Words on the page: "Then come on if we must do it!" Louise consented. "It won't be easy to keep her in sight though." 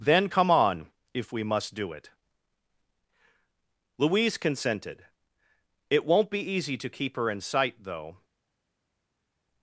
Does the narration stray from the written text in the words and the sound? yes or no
no